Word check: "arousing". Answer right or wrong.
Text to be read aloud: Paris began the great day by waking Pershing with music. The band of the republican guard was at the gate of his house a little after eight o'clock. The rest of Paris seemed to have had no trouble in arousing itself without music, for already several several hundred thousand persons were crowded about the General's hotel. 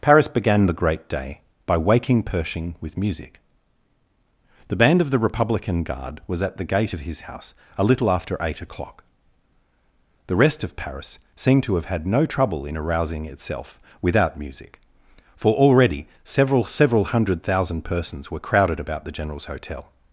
right